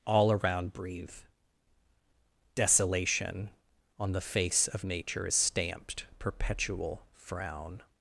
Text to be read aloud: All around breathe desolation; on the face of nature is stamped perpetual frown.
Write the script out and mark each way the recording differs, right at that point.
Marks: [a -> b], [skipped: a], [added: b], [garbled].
All around breathe desolation; on the face of nature is stamped perpetual frown.